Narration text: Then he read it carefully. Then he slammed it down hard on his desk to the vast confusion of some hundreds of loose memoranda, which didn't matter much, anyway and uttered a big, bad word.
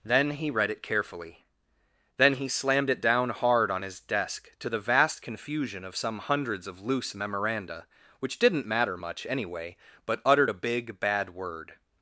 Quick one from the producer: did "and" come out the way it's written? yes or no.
no